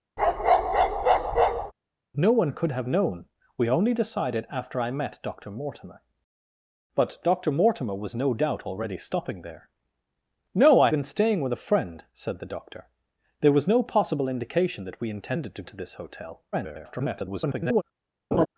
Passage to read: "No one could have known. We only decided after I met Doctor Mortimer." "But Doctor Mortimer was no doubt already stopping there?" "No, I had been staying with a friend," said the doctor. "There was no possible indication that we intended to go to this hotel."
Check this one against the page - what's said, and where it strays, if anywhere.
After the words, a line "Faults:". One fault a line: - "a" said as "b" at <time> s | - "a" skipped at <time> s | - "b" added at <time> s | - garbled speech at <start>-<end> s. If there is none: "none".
"No one could have known. We only decided after I met Doctor Mortimer." "But Doctor Mortimer was no doubt already stopping there?" "No, I been staying with a friend," said the doctor. "There was no possible indication that we intended to to this hotel." [garbled]
Faults:
- "had" skipped at 10.9 s
- "go" skipped at 15.6 s
- garbled speech at 16.5-17.8 s